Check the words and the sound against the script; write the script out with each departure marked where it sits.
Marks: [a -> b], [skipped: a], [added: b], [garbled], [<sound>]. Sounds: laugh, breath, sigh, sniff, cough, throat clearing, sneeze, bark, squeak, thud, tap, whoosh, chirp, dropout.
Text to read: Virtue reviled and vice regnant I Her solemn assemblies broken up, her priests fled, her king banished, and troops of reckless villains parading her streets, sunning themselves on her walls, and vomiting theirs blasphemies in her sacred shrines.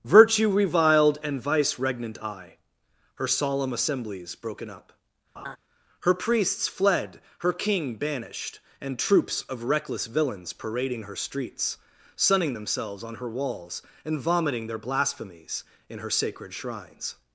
Virtue reviled and vice regnant I Her solemn assemblies broken up, [laugh] her priests fled, her king banished, and troops of reckless villains parading her streets, sunning themselves on her walls, and vomiting [theirs -> their] blasphemies in her sacred shrines.